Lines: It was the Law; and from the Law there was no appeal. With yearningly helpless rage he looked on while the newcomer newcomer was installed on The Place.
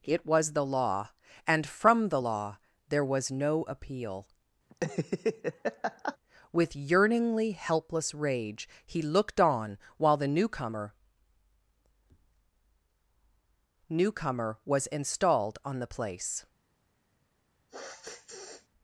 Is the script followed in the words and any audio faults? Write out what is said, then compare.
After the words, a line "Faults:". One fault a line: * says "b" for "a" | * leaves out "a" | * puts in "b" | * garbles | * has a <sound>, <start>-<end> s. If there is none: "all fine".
It was the Law; and from the Law there was no appeal. With yearningly helpless rage he looked on while the newcomer newcomer was installed on The Place.
Faults:
* has a laugh, 4.7-6.2 s
* has a sniff, 17.7-18.7 s